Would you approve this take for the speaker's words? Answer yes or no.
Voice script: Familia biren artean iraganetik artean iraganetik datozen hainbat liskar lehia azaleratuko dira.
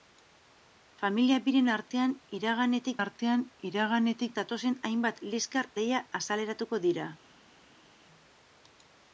yes